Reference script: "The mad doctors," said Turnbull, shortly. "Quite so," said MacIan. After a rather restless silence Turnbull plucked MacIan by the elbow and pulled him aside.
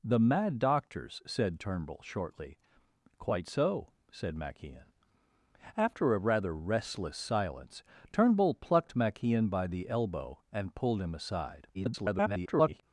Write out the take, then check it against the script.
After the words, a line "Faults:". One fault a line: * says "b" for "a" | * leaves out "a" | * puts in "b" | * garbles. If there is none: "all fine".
"The mad doctors," said Turnbull, shortly. "Quite so," said MacIan. After a rather restless silence Turnbull plucked MacIan by the elbow and pulled him aside. [garbled]
Faults:
* garbles